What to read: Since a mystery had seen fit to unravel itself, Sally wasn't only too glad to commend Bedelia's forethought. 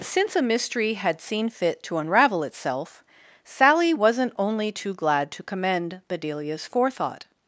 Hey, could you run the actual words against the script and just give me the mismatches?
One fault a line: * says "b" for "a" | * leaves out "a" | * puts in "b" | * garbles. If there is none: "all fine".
all fine